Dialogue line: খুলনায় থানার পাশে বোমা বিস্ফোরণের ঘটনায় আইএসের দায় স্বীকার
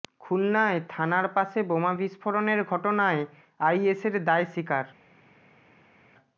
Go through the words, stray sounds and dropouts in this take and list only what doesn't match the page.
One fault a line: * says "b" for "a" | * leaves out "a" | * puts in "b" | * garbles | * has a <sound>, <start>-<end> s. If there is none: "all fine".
all fine